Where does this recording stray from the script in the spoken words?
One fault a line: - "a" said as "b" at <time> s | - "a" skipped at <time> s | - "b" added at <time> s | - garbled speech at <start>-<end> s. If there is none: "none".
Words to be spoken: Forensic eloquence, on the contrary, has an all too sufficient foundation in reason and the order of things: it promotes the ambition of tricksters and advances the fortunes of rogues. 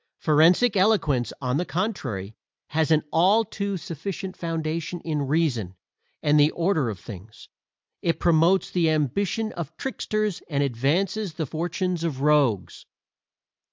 none